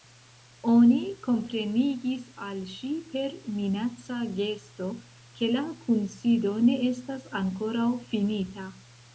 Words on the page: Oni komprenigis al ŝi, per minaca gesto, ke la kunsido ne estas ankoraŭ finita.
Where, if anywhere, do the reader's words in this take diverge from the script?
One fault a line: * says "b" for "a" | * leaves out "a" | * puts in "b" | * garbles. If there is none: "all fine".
all fine